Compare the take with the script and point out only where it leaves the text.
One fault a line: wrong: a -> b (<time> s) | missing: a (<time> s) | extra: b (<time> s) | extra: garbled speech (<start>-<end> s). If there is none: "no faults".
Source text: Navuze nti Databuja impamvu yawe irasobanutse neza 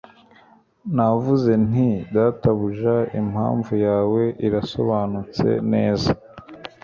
no faults